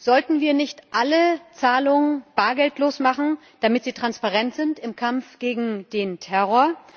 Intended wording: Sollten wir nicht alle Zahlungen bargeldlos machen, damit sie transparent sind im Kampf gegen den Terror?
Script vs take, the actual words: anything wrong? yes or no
no